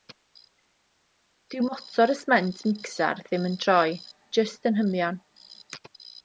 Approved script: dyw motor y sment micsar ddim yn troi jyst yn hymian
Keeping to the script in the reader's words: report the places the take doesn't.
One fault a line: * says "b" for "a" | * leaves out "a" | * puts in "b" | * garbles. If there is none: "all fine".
all fine